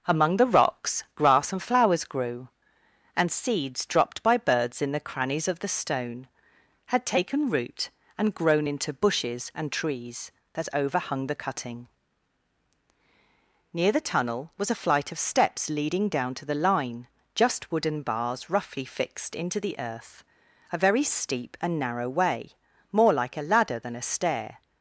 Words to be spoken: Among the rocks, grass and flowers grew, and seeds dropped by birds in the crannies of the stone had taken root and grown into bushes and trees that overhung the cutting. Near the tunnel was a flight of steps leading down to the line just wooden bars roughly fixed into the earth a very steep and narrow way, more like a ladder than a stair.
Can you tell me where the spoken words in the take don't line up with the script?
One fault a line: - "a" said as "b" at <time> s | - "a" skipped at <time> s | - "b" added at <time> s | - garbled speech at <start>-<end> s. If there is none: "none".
none